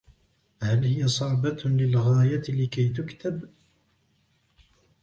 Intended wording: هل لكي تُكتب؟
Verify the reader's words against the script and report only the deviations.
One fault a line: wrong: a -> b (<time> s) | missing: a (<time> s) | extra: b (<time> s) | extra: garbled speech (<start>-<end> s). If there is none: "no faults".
extra: هي صعبة للغاية (0.8 s)